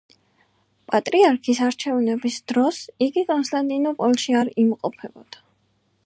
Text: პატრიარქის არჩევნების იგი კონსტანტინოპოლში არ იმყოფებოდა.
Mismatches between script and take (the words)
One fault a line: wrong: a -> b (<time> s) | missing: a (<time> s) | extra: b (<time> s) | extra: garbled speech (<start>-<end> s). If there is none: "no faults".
extra: დროს (2.5 s)